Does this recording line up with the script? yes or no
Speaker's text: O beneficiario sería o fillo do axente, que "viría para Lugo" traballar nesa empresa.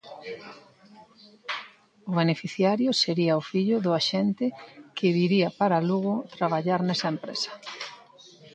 yes